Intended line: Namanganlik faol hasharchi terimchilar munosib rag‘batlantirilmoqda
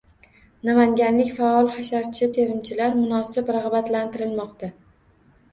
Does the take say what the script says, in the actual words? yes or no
yes